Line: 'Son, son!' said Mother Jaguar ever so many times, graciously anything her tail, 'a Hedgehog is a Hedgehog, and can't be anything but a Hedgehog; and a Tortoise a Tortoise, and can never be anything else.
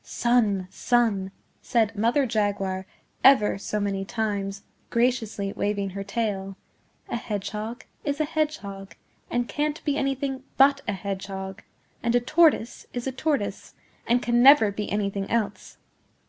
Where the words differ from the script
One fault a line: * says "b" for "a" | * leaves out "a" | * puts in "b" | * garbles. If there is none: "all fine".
* says "waving" for "anything"
* puts in "is"